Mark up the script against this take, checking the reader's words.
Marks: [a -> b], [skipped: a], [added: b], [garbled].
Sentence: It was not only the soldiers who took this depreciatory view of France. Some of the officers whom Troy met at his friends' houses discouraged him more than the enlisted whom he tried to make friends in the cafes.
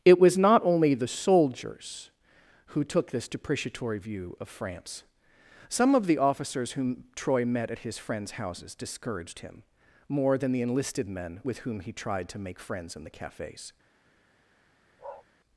It was not only the soldiers who took this depreciatory view of France. Some of the officers whom Troy met at his friends' houses discouraged him more than the enlisted [added: men with] whom he tried to make friends in the cafes.